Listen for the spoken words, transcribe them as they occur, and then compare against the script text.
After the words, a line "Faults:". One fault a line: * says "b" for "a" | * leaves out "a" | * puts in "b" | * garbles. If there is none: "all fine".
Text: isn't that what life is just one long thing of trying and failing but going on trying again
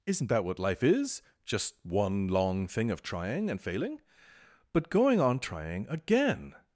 isn't that what life is just one long thing of trying and failing but going on trying again
Faults:
all fine